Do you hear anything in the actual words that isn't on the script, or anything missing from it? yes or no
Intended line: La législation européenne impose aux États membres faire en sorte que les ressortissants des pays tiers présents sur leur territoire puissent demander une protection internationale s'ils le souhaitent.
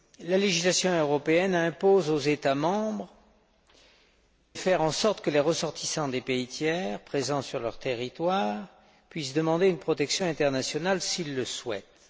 no